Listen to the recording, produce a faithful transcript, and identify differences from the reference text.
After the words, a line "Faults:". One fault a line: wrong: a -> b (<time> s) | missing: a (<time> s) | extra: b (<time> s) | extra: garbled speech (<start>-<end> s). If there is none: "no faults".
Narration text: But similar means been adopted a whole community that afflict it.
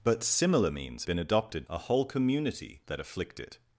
But similar means been adopted a whole community that afflict it.
Faults:
no faults